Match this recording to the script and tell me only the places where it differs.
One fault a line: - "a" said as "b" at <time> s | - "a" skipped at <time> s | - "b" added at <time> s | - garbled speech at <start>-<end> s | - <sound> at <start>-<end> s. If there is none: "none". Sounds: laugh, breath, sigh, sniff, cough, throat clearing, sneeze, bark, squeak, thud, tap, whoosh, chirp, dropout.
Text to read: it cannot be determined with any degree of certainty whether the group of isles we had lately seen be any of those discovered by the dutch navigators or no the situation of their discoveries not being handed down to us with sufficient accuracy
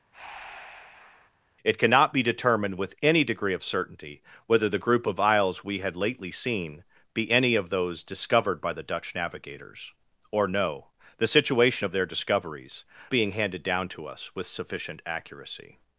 - breath at 0.1-1.3 s
- "not" skipped at 12.8 s